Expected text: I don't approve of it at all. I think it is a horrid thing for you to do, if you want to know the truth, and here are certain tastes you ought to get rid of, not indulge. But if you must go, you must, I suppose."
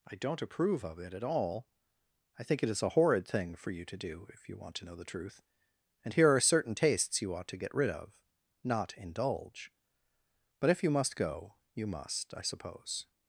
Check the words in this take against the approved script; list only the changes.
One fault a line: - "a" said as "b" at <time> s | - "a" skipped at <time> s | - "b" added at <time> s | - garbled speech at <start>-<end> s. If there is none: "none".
none